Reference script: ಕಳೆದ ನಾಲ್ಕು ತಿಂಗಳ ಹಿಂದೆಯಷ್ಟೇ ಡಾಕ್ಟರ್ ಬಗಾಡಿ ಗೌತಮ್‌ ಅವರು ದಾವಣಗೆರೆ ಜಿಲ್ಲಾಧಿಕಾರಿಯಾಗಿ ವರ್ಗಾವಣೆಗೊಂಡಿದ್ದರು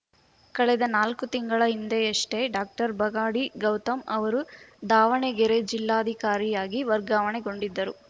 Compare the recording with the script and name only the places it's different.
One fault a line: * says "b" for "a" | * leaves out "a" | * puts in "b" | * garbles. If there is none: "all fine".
all fine